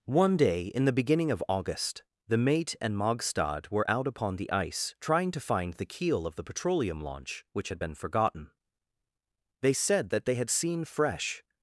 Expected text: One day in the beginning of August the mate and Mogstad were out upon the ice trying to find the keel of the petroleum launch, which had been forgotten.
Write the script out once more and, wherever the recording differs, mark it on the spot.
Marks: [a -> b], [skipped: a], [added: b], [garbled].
One day in the beginning of August the mate and Mogstad were out upon the ice trying to find the keel of the petroleum launch, which had been forgotten. [added: They said that they had seen fresh]